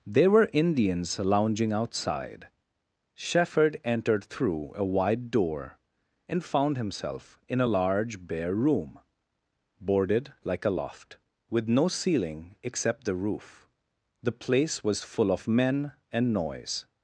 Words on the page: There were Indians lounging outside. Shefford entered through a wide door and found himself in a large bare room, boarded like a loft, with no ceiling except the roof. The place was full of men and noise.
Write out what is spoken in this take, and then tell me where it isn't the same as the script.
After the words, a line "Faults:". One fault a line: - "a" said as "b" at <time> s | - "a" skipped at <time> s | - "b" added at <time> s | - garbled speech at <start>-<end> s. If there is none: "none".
There were Indians lounging outside. Shefford entered through a wide door and found himself in a large bare room, boarded like a loft, with no ceiling except the roof. The place was full of men and noise.
Faults:
none